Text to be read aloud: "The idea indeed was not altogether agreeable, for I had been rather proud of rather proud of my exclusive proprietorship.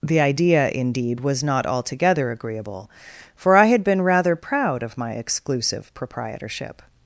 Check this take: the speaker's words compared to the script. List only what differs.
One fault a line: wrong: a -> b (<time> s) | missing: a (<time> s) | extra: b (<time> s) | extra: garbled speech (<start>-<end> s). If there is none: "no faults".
missing: rather proud of (5.0 s)